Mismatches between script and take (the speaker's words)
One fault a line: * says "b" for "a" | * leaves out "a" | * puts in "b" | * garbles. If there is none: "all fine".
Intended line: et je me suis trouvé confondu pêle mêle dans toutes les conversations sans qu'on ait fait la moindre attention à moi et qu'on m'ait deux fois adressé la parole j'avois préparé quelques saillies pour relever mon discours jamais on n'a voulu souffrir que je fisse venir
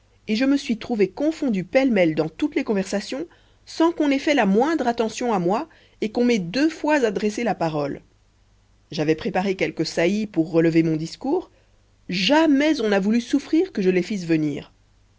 * puts in "les"